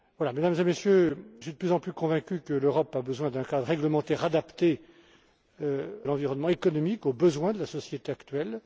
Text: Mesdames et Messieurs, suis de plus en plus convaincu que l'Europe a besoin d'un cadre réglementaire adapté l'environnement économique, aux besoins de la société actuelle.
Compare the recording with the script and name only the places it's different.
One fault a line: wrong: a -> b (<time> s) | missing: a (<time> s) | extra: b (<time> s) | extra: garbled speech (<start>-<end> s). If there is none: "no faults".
no faults